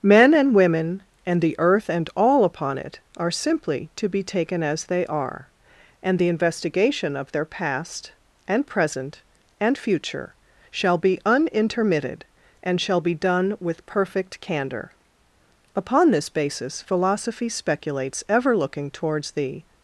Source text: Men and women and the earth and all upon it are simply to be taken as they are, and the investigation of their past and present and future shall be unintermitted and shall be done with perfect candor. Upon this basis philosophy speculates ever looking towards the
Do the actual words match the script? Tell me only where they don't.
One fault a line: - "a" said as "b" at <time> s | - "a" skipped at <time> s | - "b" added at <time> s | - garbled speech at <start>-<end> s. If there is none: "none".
none